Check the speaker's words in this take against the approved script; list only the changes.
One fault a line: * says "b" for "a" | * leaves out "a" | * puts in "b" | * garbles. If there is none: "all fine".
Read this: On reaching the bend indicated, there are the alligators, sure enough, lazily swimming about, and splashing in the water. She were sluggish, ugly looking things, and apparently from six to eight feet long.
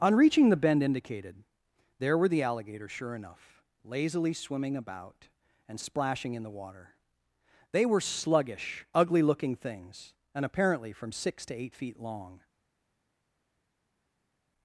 * says "were" for "are"
* says "They" for "She"